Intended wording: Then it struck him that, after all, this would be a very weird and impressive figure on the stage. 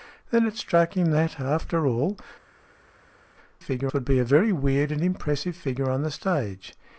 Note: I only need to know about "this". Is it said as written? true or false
false